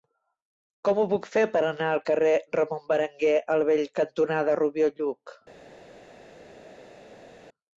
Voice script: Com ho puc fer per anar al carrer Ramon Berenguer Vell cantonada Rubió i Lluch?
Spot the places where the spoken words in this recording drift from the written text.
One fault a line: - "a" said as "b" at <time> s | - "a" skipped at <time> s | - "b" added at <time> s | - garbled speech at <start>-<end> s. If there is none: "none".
- "el" added at 3.6 s